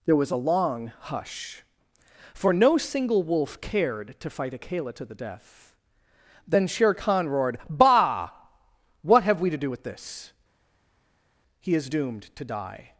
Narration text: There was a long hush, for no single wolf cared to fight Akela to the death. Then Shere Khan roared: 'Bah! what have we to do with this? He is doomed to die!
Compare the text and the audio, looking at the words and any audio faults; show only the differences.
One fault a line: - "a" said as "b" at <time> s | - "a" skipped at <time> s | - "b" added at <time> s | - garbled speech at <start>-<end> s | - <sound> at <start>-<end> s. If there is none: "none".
none